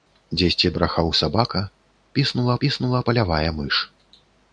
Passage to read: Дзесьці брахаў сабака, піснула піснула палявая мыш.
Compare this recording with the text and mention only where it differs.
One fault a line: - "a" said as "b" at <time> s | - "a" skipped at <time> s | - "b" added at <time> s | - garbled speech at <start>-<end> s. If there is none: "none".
none